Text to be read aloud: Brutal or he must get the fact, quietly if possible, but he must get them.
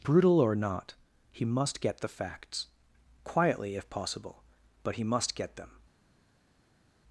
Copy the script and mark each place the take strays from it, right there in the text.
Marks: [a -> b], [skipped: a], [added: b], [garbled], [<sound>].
Brutal or [added: not] he must get the [fact, -> facts] quietly if possible, but he must get them.